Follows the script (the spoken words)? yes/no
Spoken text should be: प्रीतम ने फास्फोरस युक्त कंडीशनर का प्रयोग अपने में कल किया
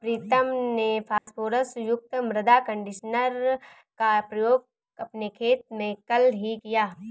no